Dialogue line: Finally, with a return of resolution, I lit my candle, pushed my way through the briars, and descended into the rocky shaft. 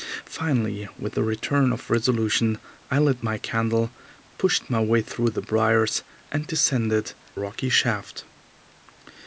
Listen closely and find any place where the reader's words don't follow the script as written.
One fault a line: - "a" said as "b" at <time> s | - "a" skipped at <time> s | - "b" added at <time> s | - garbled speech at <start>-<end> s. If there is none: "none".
- "into the" skipped at 7.1 s